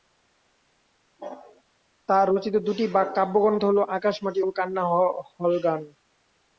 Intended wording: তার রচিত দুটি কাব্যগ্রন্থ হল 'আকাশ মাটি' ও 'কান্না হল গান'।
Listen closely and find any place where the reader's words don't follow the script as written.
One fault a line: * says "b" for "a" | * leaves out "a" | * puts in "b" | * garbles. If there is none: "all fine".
all fine